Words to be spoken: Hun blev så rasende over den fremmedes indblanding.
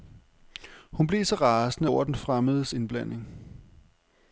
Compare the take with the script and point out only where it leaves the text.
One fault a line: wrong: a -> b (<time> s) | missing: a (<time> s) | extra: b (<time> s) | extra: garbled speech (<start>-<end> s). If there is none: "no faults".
no faults